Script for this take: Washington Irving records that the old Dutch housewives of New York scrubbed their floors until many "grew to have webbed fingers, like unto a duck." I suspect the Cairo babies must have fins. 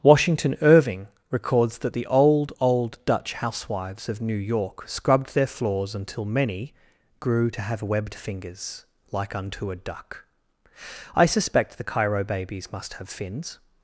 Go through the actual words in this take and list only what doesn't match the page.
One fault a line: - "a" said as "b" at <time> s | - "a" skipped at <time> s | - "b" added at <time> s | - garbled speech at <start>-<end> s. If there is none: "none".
- "old" added at 2.6 s